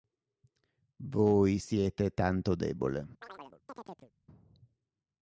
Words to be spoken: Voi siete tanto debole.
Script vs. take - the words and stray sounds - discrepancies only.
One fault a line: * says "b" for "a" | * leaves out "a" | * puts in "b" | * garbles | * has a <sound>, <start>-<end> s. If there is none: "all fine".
* has a chirp, 3.2-4.1 s